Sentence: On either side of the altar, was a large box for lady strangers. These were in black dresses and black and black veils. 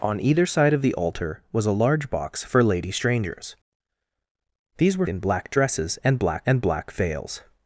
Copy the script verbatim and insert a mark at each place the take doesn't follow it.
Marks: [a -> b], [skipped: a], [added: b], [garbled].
On either side of the altar, was a large box for lady strangers. These were in black dresses and black and black veils.